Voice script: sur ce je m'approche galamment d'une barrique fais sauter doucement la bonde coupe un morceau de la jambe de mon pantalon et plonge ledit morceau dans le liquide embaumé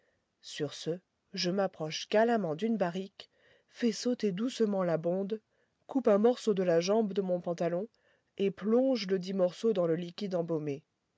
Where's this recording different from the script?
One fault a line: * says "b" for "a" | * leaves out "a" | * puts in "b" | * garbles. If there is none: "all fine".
all fine